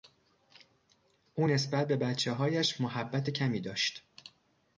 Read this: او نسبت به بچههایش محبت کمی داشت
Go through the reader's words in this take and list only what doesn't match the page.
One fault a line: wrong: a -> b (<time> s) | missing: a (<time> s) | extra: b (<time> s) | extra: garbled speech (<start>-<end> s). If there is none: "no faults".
no faults